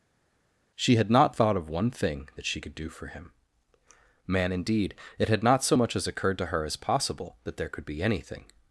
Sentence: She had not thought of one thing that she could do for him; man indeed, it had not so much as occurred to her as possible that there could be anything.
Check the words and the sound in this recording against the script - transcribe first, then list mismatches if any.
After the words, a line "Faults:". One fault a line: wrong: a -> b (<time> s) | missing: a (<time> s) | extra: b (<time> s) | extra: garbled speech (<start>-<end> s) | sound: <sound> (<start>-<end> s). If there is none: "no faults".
She had not thought of one thing that she could do for him; man indeed, it had not so much as occurred to her as possible that there could be anything.
Faults:
no faults